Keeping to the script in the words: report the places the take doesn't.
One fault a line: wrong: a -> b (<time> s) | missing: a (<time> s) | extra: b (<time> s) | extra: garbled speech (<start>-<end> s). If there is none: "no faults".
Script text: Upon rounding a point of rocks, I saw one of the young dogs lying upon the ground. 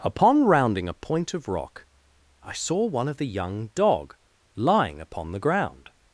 wrong: rocks -> rock (1.5 s)
wrong: dogs -> dog (3.7 s)